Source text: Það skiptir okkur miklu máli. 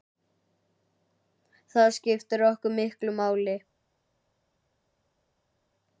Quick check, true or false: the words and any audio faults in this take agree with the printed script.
true